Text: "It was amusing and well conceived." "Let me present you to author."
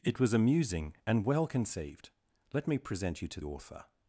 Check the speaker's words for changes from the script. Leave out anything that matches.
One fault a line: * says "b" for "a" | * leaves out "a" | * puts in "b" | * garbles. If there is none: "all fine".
all fine